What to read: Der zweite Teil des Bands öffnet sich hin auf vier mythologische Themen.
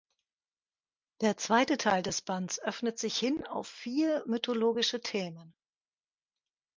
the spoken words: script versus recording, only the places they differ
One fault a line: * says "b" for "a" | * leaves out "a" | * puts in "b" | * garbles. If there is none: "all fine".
all fine